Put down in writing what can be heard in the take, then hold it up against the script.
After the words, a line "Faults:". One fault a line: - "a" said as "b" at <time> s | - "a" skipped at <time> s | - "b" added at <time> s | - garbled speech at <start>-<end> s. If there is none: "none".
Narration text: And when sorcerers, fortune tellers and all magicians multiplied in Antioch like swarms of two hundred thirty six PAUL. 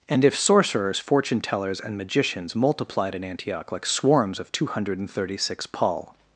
And if sorcerers, fortune tellers and magicians multiplied in Antioch like swarms of two hundred thirty six PAUL.
Faults:
- "when" said as "if" at 0.2 s
- "all" skipped at 2.0 s